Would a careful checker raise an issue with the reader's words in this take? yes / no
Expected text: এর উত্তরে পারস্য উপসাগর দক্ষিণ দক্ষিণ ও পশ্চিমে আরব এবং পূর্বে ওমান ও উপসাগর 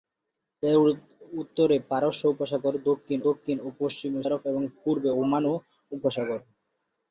no